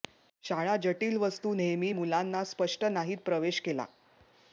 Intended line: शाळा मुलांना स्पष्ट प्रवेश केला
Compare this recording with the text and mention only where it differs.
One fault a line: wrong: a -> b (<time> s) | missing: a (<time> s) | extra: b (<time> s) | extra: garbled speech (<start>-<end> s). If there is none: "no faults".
extra: जटिल वस्तू नेहमी (0.8 s)
extra: नाहीत (2.8 s)